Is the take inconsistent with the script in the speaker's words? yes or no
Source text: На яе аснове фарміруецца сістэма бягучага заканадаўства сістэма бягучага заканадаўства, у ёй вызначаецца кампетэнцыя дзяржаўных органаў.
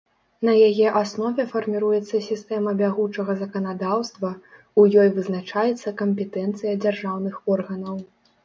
yes